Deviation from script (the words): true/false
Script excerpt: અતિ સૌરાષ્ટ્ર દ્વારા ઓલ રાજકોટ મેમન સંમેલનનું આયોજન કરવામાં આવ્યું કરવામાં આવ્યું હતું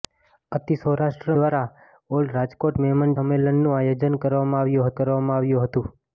false